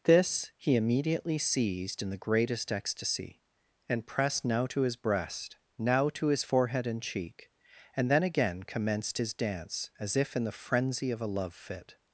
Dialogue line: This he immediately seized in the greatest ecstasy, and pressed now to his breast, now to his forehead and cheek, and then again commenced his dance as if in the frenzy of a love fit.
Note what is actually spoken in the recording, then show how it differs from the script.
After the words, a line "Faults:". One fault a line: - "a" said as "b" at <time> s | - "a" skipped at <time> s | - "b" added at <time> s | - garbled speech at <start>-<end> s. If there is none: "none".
This he immediately seized in the greatest ecstasy, and pressed now to his breast, now to his forehead and cheek, and then again commenced his dance as if in the frenzy of a love fit.
Faults:
none